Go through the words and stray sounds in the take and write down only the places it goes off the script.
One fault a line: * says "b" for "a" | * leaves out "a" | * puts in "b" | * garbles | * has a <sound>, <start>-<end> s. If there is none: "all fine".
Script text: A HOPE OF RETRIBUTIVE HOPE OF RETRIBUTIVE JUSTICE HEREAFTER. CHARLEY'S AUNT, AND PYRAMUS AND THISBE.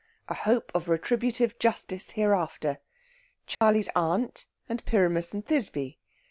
* leaves out "HOPE OF RETRIBUTIVE"
* has a dropout, 3.5-3.6 s